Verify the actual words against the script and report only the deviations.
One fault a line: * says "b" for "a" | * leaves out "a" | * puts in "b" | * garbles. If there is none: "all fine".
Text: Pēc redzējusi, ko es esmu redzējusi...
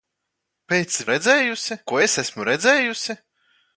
all fine